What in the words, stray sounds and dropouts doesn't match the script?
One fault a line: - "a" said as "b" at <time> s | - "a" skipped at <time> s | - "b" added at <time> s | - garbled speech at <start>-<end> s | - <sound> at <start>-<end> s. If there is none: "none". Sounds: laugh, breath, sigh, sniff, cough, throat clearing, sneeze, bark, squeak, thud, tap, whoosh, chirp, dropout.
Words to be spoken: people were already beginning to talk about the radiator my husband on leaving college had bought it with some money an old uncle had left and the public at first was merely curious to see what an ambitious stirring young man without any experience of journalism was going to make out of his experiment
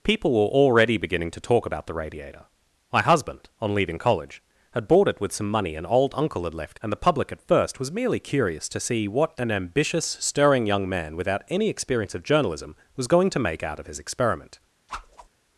- whoosh at 14.9-15.3 s